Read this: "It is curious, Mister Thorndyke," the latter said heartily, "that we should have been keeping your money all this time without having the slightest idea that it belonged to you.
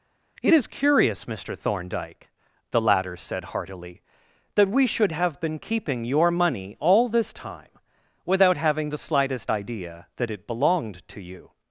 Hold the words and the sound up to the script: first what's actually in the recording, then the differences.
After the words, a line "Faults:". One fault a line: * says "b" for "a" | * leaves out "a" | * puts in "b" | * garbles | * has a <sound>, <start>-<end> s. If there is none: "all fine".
"It is curious, Mister Thorndyke," the latter said heartily, "that we should have been keeping your money all this time without having the slightest idea that it belonged to you.
Faults:
all fine